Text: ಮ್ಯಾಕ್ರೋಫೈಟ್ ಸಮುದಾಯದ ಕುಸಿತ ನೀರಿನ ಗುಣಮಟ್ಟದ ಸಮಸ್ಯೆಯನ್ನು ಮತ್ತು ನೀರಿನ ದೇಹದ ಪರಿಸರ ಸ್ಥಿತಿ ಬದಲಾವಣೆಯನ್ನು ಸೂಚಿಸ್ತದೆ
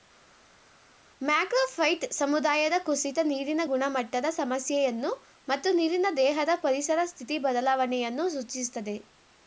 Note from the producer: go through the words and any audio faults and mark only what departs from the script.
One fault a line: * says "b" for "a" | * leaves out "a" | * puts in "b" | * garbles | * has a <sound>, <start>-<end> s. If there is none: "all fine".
all fine